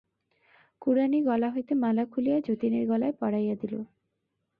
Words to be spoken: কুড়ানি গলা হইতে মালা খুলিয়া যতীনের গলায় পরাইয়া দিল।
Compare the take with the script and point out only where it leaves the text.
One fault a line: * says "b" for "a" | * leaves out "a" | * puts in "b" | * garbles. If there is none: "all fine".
all fine